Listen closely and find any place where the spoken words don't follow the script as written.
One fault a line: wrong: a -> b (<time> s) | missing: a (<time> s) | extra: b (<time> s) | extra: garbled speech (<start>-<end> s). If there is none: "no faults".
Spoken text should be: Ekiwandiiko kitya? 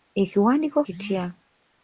no faults